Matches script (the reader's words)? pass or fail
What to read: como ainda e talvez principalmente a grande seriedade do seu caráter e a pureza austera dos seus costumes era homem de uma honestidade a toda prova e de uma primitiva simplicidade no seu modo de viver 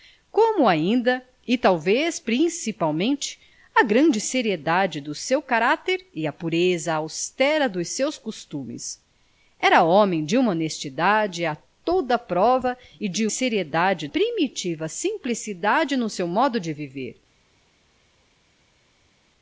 fail